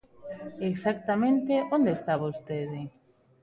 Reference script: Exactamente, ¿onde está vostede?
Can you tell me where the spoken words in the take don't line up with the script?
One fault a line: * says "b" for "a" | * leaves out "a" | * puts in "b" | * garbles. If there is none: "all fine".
all fine